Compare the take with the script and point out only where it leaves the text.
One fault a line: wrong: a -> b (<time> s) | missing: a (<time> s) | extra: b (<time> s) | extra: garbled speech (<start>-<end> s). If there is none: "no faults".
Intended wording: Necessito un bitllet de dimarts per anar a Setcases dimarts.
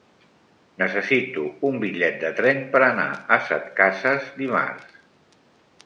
wrong: dimarts -> tren (2.4 s)